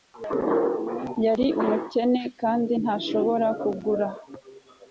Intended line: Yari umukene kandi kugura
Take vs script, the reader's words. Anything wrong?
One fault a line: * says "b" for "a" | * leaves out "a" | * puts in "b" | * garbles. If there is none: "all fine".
* puts in "ntashobora"